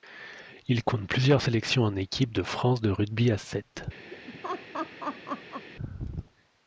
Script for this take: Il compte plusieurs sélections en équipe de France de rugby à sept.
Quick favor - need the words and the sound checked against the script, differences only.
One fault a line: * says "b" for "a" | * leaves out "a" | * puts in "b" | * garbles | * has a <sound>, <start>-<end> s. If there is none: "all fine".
* has a laugh, 4.1-5.7 s